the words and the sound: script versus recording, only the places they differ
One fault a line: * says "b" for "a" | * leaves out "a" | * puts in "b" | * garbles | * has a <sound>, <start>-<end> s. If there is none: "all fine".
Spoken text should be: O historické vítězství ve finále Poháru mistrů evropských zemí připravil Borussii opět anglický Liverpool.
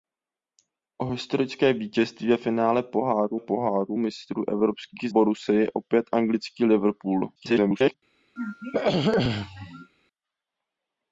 * puts in "Poháru"
* leaves out "zemí připravil"
* garbles
* has a throat clearing, 8.4-9.9 s